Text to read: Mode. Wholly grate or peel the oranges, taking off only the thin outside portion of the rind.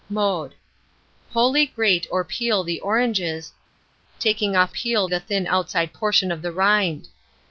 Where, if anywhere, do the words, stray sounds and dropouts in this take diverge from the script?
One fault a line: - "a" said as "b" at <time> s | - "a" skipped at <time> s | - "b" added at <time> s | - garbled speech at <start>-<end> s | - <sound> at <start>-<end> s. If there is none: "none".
- "only" said as "peel" at 4.7 s